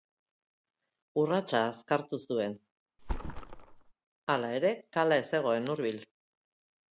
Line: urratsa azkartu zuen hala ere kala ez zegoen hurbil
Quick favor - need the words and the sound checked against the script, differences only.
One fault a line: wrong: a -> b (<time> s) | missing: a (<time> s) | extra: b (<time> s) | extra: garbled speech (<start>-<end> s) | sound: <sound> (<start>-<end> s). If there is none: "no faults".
sound: thud (3.0-3.9 s)